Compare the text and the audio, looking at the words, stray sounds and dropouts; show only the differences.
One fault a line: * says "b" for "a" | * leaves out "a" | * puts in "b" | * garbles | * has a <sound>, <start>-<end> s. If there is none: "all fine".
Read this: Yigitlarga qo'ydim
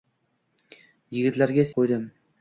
all fine